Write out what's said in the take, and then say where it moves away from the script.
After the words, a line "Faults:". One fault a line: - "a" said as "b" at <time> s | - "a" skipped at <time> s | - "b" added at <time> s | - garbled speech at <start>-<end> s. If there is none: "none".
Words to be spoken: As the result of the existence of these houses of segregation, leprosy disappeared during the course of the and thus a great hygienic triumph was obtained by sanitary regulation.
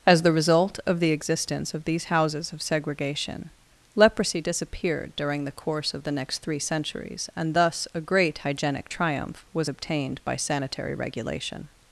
As the result of the existence of these houses of segregation, leprosy disappeared during the course of the next three centuries and thus a great hygienic triumph was obtained by sanitary regulation.
Faults:
- "next three centuries" added at 6.1 s